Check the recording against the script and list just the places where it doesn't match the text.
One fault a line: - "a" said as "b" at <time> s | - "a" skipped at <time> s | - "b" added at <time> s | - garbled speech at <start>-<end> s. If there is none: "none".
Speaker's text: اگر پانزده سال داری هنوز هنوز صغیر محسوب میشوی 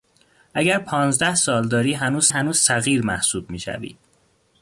none